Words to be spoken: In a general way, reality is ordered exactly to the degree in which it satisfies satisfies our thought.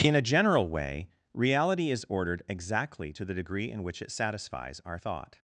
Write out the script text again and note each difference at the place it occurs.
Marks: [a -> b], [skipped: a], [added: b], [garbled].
In a general way, reality is ordered exactly to the degree in which it satisfies [skipped: satisfies] our thought.